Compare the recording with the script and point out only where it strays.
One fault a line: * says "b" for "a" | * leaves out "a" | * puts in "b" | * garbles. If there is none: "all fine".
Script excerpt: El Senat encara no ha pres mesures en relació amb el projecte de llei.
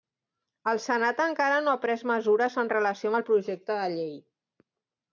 all fine